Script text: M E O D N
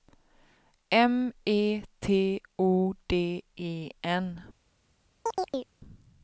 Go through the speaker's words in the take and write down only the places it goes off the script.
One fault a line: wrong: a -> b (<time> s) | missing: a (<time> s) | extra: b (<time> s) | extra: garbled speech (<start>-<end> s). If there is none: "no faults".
extra: T (2.0 s)
extra: E (3.6 s)